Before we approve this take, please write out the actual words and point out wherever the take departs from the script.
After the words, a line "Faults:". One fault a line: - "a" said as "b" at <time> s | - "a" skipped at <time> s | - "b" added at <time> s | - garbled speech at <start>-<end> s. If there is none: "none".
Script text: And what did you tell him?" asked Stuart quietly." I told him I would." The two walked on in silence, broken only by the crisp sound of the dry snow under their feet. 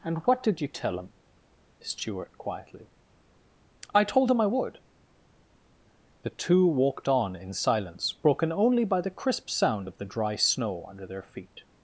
And what did you tell him?" Stuart quietly." I told him I would." The two walked on in silence, broken only by the crisp sound of the dry snow under their feet.
Faults:
- "asked" skipped at 1.1 s